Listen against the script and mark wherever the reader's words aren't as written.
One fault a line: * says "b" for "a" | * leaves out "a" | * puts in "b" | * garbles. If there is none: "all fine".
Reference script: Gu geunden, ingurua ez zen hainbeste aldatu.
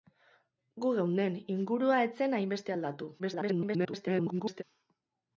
* garbles